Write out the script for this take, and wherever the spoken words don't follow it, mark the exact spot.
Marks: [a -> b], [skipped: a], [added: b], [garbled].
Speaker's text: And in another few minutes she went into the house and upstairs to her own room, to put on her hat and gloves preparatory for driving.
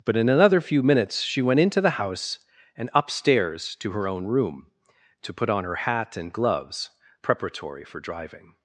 [And -> But] in another few minutes she went into the house and upstairs to her own room, to put on her hat and gloves preparatory for driving.